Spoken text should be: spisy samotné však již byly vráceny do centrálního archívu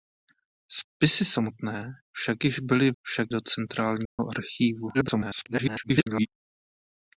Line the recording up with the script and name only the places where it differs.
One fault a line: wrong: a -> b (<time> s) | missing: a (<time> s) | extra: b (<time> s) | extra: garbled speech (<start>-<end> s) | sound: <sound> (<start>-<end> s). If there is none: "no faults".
wrong: vráceny -> však (3.0 s)
sound: dropout (4.1-4.2 s)
extra: garbled speech (4.9-6.3 s)